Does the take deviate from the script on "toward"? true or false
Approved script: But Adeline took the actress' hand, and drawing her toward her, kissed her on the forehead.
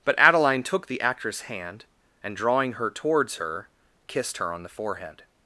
true